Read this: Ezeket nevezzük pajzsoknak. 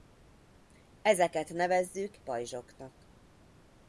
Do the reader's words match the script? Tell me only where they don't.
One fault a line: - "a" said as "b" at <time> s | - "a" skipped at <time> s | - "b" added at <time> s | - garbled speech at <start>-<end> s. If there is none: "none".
none